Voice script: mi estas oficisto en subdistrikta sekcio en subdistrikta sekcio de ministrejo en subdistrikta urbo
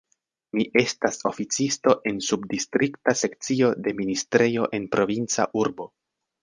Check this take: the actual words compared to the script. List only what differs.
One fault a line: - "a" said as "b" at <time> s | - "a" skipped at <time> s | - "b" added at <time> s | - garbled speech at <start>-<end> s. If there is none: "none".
- "en subdistrikta sekcio" skipped at 3.7 s
- "subdistrikta" said as "provinca" at 5.0 s